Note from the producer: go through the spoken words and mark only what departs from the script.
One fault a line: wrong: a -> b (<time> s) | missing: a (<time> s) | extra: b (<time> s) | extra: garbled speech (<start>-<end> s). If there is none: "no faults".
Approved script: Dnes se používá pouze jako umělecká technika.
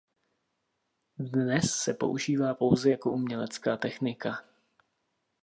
no faults